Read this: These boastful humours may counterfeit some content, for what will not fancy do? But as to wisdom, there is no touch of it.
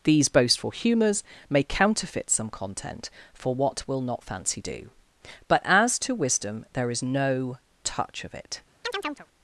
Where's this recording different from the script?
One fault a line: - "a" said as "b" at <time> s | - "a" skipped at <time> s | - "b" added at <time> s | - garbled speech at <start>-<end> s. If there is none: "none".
none